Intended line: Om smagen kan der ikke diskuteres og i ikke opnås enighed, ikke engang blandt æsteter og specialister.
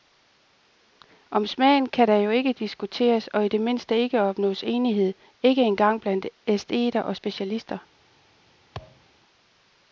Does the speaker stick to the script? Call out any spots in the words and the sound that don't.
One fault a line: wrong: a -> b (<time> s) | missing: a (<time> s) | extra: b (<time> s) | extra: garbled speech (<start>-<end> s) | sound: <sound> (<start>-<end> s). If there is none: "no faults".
extra: jo (2.1 s)
extra: det mindste (3.5 s)
sound: thud (8.7-9.1 s)